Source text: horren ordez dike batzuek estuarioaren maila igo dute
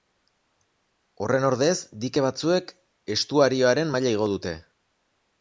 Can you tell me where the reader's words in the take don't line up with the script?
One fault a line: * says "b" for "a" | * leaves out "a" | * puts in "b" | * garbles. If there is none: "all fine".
all fine